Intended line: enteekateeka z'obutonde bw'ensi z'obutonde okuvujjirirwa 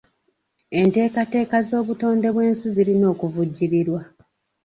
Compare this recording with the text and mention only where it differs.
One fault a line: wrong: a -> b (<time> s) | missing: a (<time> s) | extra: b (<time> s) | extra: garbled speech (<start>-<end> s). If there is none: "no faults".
wrong: z'obutonde -> zirina (2.7 s)